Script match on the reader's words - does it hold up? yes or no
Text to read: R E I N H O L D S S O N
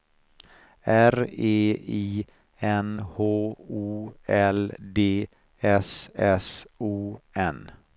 yes